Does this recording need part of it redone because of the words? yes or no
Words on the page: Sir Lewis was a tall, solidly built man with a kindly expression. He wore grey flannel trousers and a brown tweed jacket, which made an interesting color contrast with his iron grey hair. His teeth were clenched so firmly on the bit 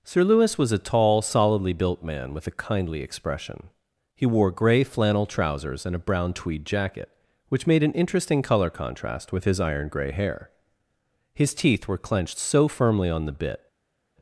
no